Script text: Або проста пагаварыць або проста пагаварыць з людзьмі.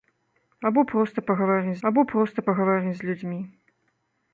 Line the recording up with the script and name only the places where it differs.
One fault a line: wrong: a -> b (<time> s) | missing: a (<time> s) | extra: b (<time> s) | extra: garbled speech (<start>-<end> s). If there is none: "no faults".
no faults